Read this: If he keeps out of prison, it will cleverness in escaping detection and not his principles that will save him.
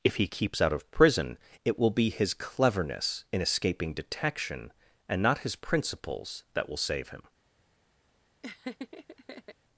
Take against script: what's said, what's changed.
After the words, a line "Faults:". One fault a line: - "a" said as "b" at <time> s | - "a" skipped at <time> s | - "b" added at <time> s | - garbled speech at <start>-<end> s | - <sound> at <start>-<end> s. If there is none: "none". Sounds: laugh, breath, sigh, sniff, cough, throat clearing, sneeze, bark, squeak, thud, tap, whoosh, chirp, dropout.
If he keeps out of prison, it will be his cleverness in escaping detection and not his principles that will save him.
Faults:
- "be his" added at 1.9 s
- laugh at 8.4-9.5 s